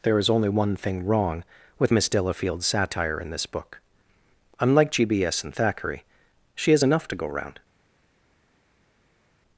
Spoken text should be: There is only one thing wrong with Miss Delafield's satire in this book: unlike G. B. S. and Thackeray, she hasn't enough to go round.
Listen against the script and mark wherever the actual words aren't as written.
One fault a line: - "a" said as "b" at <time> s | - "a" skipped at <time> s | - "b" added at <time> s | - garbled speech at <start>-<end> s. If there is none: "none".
- "hasn't" said as "has" at 6.7 s